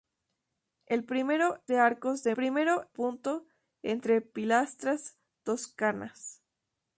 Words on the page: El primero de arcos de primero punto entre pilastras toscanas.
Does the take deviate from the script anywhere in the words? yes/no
no